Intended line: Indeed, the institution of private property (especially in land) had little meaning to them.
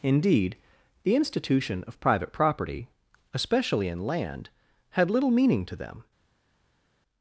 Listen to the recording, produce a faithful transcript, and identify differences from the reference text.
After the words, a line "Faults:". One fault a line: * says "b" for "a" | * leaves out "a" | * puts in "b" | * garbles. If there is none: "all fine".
Indeed, the institution of private property (especially in land) had little meaning to them.
Faults:
all fine